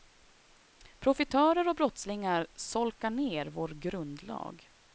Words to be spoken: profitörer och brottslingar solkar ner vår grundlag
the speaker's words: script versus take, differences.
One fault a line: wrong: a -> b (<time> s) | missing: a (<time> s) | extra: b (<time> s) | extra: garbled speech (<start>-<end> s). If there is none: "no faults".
no faults